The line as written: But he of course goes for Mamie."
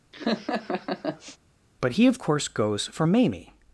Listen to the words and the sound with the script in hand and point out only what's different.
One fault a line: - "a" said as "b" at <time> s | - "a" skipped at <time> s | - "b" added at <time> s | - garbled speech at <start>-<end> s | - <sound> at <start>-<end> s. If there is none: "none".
- laugh at 0.1-1.4 s